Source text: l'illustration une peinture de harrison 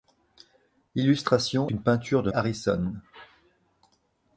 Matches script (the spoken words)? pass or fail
pass